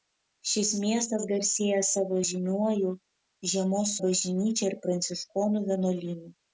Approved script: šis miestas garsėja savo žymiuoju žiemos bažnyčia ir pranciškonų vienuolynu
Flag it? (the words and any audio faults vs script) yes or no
no